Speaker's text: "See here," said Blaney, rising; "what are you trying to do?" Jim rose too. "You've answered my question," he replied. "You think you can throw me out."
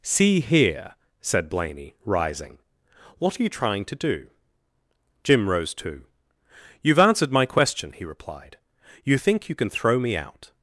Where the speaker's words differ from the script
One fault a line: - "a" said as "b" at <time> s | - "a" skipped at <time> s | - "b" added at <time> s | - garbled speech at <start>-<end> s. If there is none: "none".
none